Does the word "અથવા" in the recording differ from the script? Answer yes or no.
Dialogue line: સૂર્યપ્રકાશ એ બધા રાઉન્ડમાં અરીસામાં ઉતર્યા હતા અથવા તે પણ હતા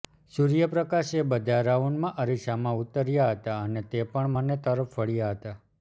yes